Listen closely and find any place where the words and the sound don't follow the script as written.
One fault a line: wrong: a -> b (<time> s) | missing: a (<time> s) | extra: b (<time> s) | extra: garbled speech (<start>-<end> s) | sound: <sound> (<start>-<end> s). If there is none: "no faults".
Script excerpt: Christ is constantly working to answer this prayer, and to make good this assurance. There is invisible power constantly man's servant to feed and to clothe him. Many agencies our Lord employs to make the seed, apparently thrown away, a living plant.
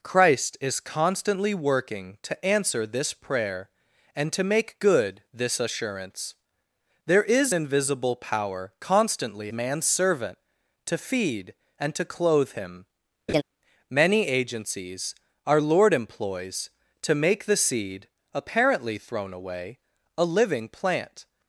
sound: laugh (13.3-13.4 s)